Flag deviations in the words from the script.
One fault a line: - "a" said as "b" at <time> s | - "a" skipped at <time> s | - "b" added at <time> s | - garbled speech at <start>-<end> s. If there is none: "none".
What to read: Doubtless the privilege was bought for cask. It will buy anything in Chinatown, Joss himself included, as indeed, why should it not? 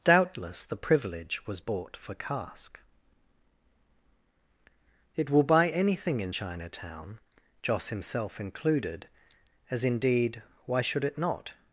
none